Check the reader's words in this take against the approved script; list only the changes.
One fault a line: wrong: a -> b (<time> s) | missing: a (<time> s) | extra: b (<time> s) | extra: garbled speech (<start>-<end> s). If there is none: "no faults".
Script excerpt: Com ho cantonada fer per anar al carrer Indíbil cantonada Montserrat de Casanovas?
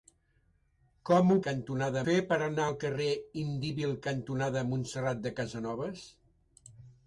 no faults